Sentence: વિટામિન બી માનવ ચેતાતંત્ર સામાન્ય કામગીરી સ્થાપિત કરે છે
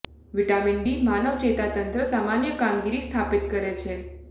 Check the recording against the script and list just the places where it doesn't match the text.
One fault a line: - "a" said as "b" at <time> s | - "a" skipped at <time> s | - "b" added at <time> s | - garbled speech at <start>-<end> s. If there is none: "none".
none